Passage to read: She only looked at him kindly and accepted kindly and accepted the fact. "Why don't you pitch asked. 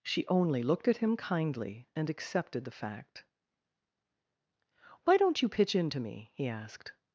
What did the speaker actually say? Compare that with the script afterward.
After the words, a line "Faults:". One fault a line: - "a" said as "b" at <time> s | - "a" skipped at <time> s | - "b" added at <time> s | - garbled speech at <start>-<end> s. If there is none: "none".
She only looked at him kindly and accepted the fact. "Why don't you pitch into me?" he asked.
Faults:
- "kindly and accepted" skipped at 2.6 s
- "into me he" added at 5.8 s